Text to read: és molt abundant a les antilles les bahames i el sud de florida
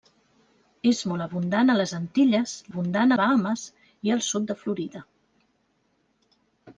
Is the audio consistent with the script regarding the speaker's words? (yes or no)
no